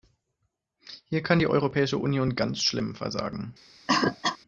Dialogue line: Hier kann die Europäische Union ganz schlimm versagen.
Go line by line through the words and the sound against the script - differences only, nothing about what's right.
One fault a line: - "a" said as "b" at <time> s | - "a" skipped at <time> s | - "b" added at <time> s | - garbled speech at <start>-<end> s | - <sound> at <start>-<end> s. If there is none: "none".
- cough at 3.9-4.4 s